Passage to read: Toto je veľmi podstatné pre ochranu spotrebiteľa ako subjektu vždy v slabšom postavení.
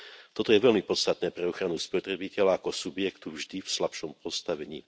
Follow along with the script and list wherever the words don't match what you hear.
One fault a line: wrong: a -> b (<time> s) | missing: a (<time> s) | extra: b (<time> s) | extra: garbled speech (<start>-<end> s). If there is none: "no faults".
no faults